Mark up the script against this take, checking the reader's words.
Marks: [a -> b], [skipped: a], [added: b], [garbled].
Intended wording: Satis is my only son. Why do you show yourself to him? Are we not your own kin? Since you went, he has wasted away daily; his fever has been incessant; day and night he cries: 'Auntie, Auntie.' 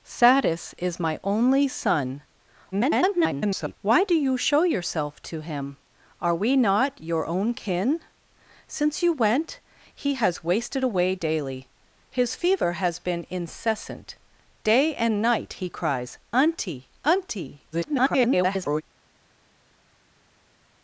Satis is my only son. [garbled] Why do you show yourself to him? Are we not your own kin? Since you went, he has wasted away daily; his fever has been incessant; day and night he cries: 'Auntie, Auntie.' [garbled]